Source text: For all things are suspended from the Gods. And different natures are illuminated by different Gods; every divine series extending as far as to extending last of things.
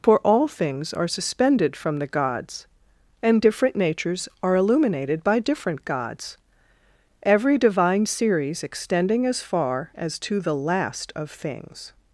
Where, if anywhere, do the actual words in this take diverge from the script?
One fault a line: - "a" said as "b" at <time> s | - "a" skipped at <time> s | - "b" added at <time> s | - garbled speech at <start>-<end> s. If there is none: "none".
- "extending" said as "the" at 10.4 s